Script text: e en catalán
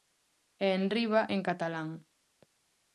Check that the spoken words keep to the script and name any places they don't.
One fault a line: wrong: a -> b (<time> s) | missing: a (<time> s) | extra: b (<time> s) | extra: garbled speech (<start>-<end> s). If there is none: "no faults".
extra: enriba (0.8 s)